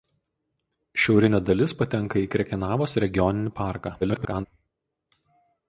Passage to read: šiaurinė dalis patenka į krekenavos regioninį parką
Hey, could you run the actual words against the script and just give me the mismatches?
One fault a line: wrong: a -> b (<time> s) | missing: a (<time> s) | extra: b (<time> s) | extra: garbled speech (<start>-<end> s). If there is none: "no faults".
extra: garbled speech (4.0-4.5 s)